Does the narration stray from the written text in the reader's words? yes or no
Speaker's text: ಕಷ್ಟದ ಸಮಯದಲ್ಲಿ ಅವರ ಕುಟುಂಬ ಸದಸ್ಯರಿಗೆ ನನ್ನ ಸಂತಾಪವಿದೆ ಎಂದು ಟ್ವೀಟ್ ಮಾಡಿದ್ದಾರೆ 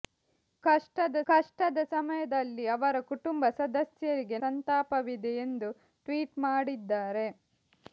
yes